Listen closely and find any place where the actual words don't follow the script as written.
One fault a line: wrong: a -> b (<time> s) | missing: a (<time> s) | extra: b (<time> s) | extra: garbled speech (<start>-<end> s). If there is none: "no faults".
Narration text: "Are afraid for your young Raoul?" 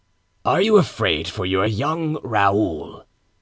extra: you (0.6 s)